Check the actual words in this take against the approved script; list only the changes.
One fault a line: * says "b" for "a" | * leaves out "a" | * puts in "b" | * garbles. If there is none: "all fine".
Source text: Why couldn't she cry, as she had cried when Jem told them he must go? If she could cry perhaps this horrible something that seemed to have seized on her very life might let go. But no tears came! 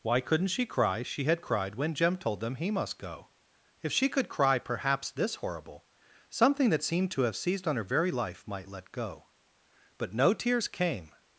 * leaves out "as"